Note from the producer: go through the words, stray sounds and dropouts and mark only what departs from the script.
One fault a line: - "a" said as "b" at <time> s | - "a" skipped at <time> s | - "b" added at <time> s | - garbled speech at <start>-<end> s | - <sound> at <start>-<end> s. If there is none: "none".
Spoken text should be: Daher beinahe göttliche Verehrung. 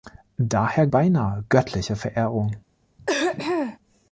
- throat clearing at 3.0-3.8 s